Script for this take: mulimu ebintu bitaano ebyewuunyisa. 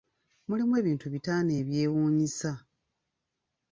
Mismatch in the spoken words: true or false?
false